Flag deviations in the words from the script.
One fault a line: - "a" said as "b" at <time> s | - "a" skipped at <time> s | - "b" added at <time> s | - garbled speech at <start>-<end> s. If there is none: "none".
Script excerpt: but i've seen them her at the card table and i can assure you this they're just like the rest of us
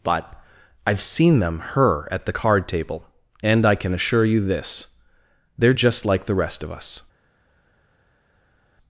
none